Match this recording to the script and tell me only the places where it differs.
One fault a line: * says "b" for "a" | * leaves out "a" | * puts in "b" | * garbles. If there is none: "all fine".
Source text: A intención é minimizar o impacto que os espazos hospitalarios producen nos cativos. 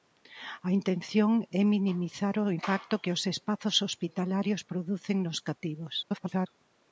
* garbles